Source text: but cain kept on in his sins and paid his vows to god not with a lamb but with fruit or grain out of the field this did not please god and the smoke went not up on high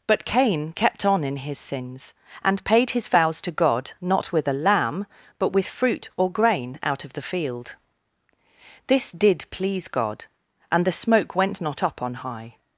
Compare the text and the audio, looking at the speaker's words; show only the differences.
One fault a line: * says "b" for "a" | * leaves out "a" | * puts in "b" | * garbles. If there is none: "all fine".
* leaves out "not"